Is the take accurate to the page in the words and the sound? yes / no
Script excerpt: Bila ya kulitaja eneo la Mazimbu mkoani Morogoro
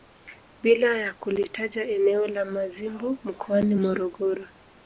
yes